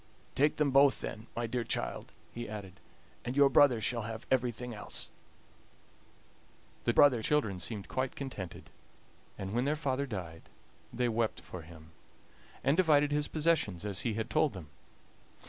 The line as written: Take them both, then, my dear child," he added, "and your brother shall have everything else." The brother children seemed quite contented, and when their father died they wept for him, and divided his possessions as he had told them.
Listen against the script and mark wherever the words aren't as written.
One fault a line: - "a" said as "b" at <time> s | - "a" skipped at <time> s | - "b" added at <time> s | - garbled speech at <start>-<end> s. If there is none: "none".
none